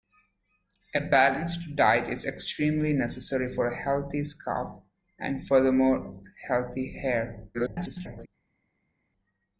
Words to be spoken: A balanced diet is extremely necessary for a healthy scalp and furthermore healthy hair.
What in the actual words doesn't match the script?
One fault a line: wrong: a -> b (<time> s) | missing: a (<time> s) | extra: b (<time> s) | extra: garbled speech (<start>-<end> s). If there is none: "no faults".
extra: garbled speech (7.5-8.3 s)